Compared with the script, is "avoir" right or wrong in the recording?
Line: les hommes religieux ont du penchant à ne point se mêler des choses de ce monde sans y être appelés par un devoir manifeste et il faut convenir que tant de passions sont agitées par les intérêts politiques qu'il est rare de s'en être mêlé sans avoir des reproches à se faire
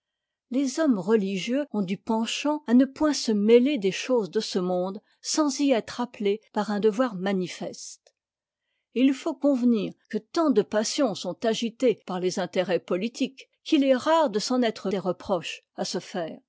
wrong